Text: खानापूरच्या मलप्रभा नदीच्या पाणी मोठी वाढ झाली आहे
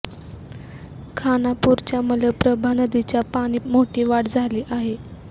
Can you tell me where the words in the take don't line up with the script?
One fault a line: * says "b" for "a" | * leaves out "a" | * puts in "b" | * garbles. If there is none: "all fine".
all fine